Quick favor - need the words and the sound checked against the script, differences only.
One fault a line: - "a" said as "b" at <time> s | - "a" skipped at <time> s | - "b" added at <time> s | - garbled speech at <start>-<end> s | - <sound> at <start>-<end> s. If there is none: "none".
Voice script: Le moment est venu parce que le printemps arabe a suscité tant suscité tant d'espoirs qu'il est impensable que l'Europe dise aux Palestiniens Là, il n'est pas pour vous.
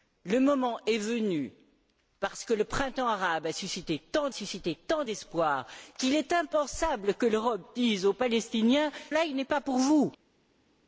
none